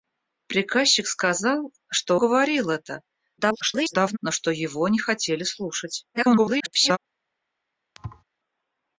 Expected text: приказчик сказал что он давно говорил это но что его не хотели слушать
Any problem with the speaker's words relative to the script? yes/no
yes